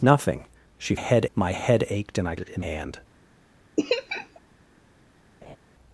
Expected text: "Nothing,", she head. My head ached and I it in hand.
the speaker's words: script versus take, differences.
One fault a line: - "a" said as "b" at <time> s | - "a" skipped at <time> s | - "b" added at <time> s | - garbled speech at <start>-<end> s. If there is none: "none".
none